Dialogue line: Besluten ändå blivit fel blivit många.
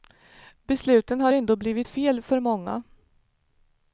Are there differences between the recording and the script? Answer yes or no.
yes